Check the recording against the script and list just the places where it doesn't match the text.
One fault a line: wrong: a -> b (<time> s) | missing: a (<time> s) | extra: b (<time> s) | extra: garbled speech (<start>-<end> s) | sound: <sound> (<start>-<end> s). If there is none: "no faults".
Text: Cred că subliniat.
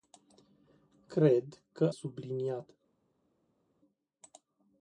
no faults